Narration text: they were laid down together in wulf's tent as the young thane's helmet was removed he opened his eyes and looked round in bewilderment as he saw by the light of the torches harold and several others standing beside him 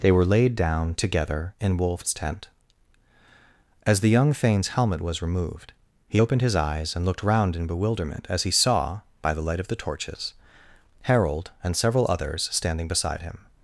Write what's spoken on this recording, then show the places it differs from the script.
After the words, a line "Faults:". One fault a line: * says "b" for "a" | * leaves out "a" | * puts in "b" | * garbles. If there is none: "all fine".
they were laid down together in wulf's tent as the young thane's helmet was removed he opened his eyes and looked round in bewilderment as he saw by the light of the torches harold and several others standing beside him
Faults:
all fine